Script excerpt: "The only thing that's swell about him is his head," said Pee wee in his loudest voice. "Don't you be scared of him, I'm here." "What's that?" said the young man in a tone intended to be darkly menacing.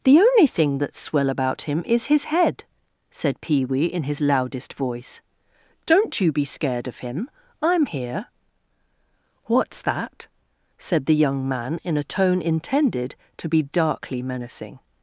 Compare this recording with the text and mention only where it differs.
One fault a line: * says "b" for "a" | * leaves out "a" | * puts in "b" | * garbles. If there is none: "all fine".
all fine